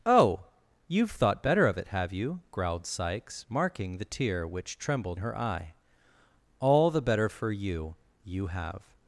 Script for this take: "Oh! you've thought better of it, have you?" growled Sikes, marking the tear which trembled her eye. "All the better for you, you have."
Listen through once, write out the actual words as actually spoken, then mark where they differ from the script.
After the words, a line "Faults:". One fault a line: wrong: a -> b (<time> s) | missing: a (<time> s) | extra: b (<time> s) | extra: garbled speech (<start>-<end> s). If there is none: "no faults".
"Oh! you've thought better of it, have you?" growled Sikes, marking the tear which trembled her eye. "All the better for you, you have."
Faults:
no faults